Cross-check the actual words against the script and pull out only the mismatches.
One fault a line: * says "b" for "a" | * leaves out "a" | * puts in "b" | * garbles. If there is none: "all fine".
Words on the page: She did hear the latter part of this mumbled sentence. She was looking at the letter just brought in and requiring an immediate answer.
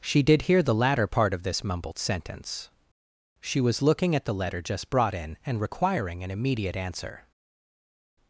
all fine